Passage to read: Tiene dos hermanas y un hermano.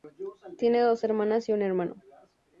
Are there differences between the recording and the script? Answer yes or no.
no